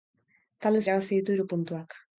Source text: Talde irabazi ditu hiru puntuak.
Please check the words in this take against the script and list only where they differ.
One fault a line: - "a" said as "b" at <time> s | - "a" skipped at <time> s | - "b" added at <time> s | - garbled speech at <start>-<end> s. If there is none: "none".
none